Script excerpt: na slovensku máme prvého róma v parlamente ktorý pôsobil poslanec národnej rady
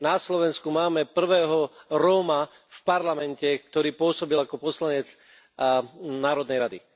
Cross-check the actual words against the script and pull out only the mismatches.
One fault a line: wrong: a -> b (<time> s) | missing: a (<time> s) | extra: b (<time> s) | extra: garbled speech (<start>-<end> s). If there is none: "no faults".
extra: ako (4.4 s)